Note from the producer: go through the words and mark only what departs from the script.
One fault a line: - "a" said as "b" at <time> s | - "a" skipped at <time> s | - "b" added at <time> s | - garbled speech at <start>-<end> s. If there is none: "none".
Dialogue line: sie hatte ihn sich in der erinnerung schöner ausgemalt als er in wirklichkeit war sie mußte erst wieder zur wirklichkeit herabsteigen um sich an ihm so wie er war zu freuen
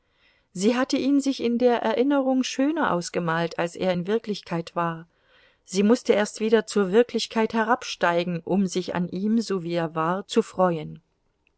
none